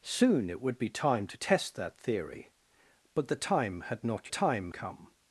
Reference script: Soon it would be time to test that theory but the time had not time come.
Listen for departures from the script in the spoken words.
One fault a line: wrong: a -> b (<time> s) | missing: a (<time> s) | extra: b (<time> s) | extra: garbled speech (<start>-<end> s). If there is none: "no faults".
no faults